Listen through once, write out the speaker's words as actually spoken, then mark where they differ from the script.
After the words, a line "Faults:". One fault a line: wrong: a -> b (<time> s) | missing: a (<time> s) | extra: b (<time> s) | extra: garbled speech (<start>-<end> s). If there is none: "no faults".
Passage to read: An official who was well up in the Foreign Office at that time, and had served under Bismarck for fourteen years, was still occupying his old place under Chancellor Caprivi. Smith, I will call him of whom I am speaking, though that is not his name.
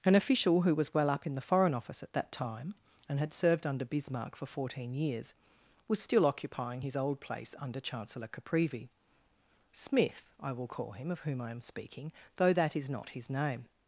An official who was well up in the Foreign Office at that time, and had served under Bismarck for fourteen years, was still occupying his old place under Chancellor Caprivi. Smith, I will call him of whom I am speaking, though that is not his name.
Faults:
no faults